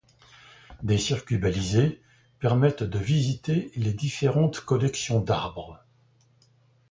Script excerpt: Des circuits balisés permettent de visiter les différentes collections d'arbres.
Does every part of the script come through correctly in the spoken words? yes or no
yes